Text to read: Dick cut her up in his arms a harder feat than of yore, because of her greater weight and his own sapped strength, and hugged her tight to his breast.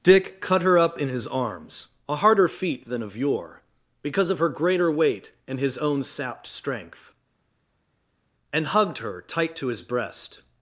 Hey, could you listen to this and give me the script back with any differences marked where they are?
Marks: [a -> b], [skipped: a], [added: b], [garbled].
Dick cut her up in his arms a harder feat than of yore, because of her greater weight and his own sapped strength, and hugged her tight to his breast.